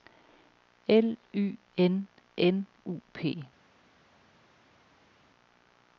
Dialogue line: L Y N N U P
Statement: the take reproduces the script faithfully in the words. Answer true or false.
true